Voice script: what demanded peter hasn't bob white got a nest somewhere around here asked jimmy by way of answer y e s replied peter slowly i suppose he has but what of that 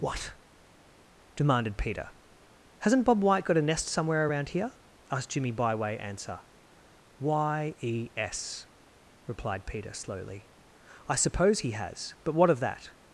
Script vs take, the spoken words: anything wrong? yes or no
yes